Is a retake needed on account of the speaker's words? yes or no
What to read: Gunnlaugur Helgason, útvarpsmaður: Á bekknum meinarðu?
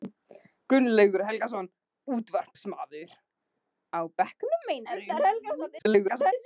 yes